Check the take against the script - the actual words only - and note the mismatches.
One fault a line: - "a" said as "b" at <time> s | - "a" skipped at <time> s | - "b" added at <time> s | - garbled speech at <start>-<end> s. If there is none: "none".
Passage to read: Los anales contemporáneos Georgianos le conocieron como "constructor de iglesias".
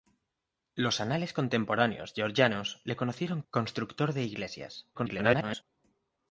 - "como" skipped at 3.4 s
- garbled speech at 4.9-5.6 s